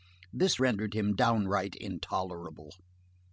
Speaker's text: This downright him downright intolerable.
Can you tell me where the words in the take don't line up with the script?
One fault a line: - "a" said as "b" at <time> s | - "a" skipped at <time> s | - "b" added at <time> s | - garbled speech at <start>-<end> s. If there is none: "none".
- "downright" said as "rendered" at 0.6 s